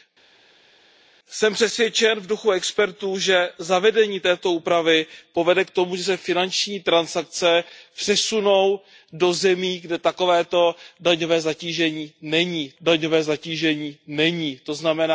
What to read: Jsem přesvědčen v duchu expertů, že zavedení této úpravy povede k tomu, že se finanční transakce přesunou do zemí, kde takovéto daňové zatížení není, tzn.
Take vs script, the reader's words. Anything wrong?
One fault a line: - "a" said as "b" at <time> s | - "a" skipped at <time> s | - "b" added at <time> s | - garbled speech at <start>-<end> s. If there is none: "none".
- "daňové zatížení není" added at 12.8 s